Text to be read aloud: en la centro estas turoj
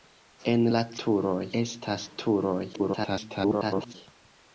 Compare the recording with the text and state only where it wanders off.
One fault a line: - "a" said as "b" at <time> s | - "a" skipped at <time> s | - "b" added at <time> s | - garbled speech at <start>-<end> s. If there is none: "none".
- "centro" said as "turoj" at 1.1 s
- garbled speech at 2.7-3.9 s